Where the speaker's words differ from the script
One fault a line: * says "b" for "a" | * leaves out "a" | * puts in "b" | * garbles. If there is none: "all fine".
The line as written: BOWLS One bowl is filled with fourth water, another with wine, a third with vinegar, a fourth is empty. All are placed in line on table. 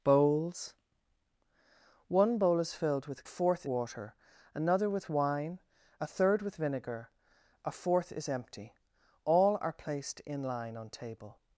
all fine